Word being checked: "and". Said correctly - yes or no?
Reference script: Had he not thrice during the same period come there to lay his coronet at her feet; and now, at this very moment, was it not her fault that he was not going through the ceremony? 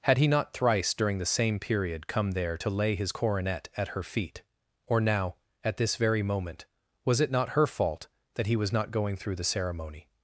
no